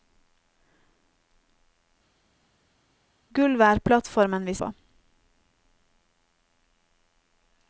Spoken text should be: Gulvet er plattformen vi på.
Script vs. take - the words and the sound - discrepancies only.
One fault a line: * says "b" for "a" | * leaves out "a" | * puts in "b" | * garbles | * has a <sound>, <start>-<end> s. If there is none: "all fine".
all fine